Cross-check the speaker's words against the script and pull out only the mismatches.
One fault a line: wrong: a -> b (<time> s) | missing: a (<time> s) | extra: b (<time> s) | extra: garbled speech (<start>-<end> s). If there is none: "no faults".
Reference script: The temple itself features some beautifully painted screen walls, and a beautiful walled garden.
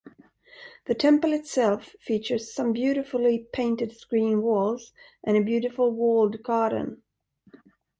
no faults